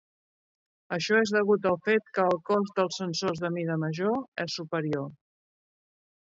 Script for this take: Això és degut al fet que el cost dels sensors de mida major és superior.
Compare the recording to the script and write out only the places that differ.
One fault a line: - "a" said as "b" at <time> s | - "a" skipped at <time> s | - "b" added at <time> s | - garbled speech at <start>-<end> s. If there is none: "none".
none